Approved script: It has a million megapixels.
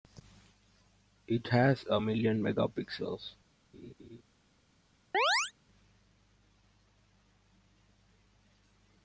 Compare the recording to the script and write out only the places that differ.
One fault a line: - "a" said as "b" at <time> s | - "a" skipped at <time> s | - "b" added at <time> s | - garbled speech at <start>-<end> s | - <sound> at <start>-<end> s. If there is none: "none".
- laugh at 3.7-4.2 s
- chirp at 5.1-5.5 s